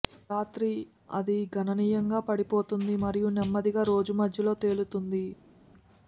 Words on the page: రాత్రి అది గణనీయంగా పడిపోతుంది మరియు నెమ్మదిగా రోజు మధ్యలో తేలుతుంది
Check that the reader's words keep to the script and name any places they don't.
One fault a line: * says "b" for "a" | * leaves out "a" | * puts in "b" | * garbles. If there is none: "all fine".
all fine